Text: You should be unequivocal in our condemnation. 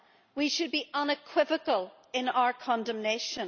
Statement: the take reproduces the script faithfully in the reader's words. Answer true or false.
false